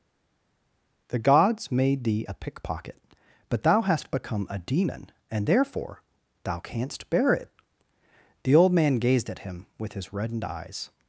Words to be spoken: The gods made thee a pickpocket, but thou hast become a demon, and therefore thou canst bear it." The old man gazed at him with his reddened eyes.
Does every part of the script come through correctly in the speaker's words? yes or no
yes